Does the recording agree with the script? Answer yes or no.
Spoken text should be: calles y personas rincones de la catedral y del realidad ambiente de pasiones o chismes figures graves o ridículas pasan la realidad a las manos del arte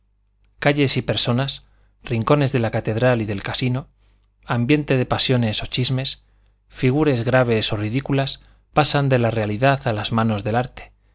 no